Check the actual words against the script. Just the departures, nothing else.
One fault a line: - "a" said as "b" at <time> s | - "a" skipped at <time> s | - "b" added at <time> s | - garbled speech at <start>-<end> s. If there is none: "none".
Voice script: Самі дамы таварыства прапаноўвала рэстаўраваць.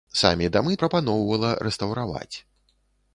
- "таварыства" skipped at 0.8 s